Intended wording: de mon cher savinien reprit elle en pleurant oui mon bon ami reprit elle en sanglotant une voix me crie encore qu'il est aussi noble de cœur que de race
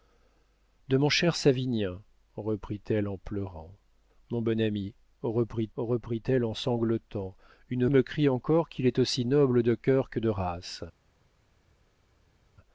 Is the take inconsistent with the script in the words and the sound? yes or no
yes